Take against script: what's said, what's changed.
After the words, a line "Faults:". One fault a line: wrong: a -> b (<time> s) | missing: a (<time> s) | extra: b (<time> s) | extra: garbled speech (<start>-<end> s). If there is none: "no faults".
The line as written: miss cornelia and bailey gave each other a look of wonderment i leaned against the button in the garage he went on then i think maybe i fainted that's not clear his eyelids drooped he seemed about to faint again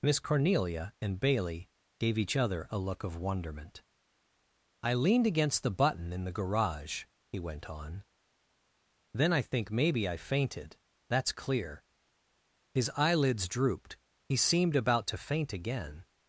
miss cornelia and bailey gave each other a look of wonderment i leaned against the button in the garage he went on then i think maybe i fainted that's clear his eyelids drooped he seemed about to faint again
Faults:
missing: not (11.3 s)